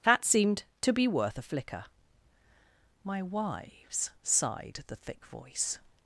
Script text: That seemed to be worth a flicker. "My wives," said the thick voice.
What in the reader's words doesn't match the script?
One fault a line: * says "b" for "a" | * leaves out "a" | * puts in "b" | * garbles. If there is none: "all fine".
* says "sighed" for "said"